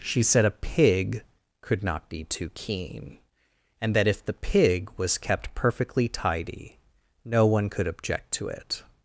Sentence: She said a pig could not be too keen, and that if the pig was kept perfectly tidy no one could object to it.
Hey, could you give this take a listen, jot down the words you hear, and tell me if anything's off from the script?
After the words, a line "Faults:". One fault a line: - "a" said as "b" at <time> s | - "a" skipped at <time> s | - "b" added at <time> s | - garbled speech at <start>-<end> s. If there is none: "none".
She said a pig could not be too keen, and that if the pig was kept perfectly tidy no one could object to it.
Faults:
none